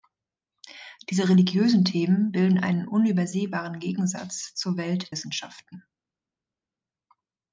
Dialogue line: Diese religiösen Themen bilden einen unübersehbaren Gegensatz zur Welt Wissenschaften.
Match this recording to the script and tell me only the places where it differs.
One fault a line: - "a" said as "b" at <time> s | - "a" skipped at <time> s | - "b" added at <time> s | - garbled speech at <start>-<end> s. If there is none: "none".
none